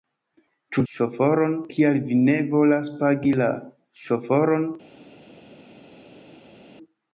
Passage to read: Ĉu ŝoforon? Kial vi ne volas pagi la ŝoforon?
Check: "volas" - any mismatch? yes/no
no